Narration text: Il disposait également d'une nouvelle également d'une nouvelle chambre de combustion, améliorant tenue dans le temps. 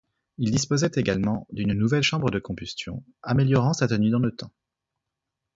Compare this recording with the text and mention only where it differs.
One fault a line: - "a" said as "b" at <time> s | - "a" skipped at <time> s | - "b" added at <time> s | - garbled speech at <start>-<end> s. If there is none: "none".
- "également d'une nouvelle" skipped at 2.0 s
- "sa" added at 3.7 s